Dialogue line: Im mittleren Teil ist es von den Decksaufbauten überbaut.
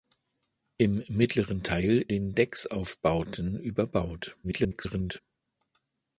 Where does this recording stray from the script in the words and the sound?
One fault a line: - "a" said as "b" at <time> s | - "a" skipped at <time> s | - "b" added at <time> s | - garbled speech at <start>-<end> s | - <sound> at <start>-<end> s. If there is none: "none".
- "ist es von" skipped at 2.1 s
- garbled speech at 4.4-5.2 s